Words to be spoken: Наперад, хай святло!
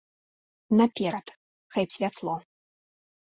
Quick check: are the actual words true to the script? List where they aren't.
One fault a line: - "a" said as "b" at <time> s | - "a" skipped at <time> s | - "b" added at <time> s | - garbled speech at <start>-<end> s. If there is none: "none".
none